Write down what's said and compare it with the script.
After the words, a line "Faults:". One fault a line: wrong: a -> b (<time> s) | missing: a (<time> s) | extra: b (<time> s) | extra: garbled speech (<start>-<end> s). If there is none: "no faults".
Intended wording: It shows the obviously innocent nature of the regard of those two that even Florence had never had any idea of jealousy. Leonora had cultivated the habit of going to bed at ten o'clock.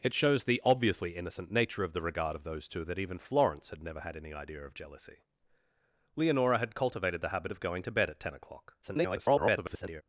It shows the obviously innocent nature of the regard of those two that even Florence had never had any idea of jealousy. Leonora had cultivated the habit of going to bed at ten o'clock. [garbled]
Faults:
extra: garbled speech (8.8-10.0 s)